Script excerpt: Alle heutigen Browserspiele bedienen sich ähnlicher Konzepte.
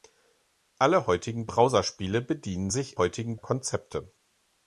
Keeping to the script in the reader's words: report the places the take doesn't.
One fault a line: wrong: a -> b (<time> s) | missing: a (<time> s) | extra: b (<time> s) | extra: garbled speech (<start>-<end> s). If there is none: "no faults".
wrong: ähnlicher -> heutigen (3.0 s)